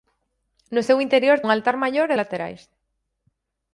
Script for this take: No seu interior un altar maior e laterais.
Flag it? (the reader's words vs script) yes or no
no